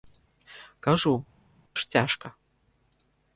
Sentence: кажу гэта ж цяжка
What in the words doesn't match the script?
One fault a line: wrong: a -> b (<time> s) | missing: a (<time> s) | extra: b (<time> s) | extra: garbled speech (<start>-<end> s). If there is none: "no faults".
missing: гэта (1.1 s)